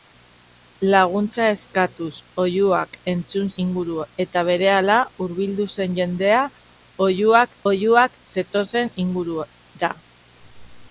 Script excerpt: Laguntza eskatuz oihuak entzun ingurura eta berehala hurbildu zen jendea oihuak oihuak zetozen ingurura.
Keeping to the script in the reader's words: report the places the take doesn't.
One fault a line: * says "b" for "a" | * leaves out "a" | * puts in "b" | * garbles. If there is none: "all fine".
all fine